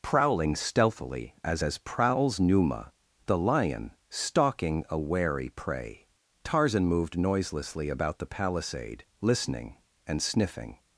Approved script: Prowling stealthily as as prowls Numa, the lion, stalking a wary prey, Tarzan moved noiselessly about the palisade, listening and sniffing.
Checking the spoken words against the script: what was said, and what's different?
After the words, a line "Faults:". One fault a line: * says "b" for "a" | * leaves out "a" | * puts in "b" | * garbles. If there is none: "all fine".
Prowling stealthily as as prowls Numa, the lion, stalking a wary prey, Tarzan moved noiselessly about the palisade, listening and sniffing.
Faults:
all fine